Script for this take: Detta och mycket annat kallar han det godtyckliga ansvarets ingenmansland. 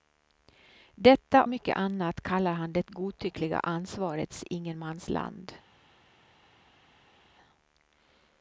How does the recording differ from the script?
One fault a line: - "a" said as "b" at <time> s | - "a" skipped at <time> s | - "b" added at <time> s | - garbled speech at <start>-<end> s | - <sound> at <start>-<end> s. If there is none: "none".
- "och" skipped at 1.4 s